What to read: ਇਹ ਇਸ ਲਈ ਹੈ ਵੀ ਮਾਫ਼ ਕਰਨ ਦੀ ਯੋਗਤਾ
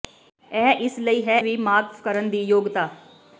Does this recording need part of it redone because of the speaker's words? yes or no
no